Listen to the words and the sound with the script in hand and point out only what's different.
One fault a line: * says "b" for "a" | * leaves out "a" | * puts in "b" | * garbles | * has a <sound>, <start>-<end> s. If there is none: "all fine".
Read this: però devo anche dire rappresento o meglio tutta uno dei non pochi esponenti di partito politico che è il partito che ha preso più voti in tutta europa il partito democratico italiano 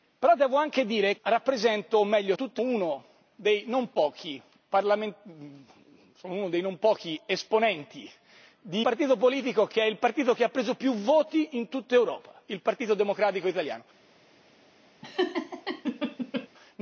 * has a laugh, 15.0-16.5 s